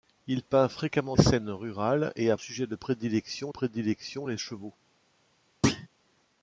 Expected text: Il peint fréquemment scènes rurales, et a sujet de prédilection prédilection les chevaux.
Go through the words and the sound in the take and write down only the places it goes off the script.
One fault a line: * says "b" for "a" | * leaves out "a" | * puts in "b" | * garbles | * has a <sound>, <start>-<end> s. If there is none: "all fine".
* has a thud, 5.6-5.9 s